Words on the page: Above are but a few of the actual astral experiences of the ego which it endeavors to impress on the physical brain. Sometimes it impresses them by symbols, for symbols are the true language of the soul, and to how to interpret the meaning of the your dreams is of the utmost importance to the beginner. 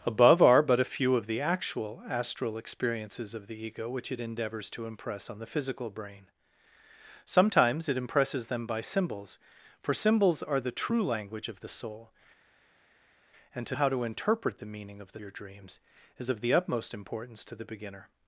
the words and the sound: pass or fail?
pass